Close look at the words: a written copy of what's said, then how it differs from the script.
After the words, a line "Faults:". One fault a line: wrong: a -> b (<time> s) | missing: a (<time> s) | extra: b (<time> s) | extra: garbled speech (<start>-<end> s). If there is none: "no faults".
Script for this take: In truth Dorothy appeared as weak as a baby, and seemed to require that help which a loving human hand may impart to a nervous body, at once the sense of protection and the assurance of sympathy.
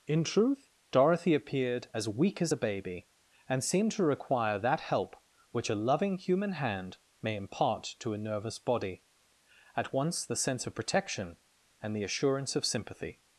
In truth Dorothy appeared as weak as a baby, and seemed to require that help which a loving human hand may impart to a nervous body, at once the sense of protection and the assurance of sympathy.
Faults:
no faults